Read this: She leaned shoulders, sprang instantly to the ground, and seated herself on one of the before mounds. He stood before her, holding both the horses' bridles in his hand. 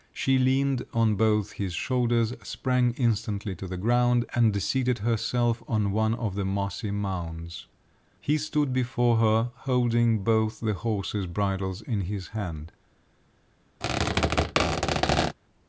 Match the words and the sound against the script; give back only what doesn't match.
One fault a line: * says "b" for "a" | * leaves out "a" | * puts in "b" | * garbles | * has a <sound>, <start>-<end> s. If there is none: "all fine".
* puts in "on both his"
* says "mossy" for "before"
* has a squeak, 13.8-15.4 s